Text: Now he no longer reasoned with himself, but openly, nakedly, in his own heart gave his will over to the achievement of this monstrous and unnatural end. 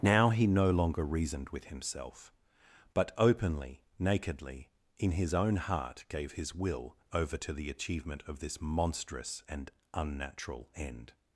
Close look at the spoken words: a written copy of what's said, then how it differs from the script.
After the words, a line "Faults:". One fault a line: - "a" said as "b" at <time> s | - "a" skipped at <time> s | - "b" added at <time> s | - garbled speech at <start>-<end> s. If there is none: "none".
Now he no longer reasoned with himself, but openly, nakedly, in his own heart gave his will over to the achievement of this monstrous and unnatural end.
Faults:
none